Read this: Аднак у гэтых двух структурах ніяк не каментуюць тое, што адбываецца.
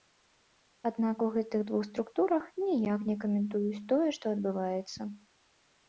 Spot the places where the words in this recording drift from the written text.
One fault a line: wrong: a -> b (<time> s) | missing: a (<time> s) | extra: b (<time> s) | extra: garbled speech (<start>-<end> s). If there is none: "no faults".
no faults